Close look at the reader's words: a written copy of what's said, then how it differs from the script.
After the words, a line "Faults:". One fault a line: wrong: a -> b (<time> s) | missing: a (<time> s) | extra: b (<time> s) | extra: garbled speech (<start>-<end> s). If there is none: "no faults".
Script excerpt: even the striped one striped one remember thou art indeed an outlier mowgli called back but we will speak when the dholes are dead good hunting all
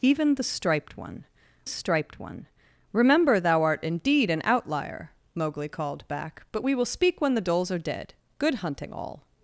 even the striped one striped one remember thou art indeed an outlier mowgli called back but we will speak when the dholes are dead good hunting all
Faults:
no faults